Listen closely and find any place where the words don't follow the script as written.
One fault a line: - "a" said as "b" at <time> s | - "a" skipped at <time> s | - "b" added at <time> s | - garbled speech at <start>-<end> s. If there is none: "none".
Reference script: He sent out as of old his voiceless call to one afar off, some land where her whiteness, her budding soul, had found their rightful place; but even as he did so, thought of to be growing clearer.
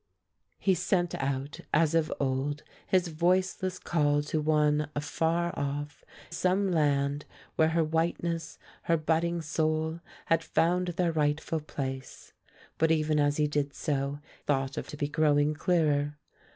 none